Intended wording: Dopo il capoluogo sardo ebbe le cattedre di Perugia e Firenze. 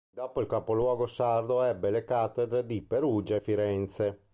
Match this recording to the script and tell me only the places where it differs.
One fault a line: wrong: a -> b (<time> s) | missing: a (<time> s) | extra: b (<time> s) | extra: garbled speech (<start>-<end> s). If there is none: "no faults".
no faults